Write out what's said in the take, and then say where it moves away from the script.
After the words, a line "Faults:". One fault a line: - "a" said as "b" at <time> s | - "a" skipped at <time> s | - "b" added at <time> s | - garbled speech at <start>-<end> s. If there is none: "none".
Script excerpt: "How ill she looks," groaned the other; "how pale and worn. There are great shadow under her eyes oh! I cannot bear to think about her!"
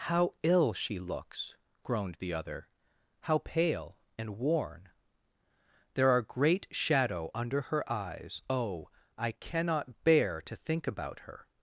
"How ill she looks," groaned the other; "how pale and worn. There are great shadow under her eyes oh! I cannot bear to think about her!"
Faults:
none